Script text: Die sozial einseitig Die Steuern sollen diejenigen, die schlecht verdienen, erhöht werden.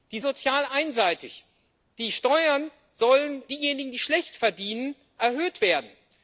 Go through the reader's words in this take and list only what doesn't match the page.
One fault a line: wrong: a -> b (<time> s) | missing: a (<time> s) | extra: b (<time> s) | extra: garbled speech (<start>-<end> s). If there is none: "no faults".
no faults